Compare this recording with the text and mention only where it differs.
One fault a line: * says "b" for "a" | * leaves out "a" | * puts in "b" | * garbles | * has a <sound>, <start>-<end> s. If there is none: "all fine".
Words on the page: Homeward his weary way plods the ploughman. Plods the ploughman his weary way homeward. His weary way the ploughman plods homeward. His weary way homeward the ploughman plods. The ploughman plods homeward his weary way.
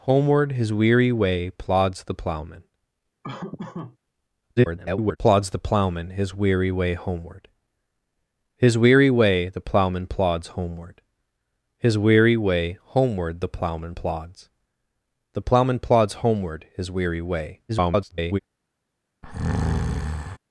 * has a laugh, 3.2-4.0 s
* garbles
* garbles
* has a breath, 19.2-20.4 s